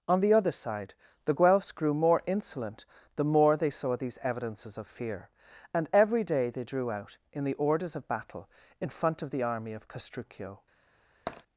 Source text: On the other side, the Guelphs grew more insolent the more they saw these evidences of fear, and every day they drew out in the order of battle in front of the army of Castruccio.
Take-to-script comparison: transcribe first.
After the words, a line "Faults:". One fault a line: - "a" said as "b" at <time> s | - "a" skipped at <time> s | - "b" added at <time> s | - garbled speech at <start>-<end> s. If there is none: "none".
On the other side, the Guelphs grew more insolent the more they saw these evidences of fear, and every day they drew out in the orders of battle in front of the army of Castruccio.
Faults:
- "order" said as "orders" at 7.5 s